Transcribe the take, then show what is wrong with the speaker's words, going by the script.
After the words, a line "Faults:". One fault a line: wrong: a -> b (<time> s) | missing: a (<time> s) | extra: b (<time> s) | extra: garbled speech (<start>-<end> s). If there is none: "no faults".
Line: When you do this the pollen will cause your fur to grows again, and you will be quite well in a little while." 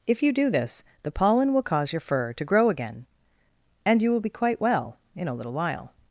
If you do this the pollen will cause your fur to grow again, and you will be quite well in a little while."
Faults:
wrong: When -> If (0.1 s)
wrong: grows -> grow (2.5 s)